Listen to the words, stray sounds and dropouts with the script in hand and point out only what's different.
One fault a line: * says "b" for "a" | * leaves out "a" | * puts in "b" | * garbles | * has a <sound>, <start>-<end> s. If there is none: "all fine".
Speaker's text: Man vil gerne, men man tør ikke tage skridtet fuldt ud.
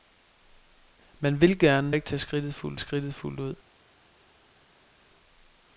* says "ikke tage skridtet fuldt" for "men man tør ikke tage"